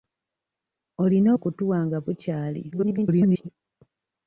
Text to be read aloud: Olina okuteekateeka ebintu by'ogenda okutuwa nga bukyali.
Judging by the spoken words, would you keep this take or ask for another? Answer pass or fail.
fail